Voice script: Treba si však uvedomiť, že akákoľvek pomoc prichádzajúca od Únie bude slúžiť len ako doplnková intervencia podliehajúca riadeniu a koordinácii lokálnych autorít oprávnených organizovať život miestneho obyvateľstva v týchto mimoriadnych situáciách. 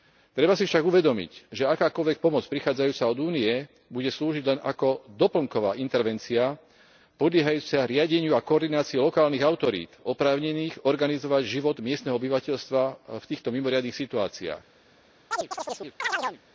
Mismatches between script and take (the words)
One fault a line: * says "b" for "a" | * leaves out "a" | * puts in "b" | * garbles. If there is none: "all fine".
all fine